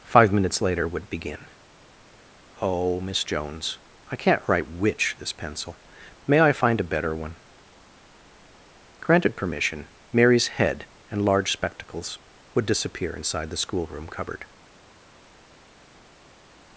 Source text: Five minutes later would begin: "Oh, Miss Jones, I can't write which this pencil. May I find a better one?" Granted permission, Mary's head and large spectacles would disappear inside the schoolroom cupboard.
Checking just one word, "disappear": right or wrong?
right